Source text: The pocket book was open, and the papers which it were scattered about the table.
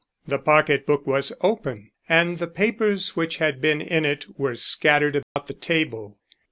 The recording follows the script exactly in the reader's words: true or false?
false